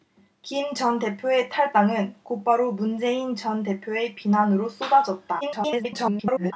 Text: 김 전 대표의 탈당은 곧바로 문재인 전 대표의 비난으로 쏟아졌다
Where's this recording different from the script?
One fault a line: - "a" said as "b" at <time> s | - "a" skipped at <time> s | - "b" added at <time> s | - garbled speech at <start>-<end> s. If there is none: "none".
- garbled speech at 5.4-6.5 s